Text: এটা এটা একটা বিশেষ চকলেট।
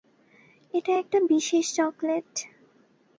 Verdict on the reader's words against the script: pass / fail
fail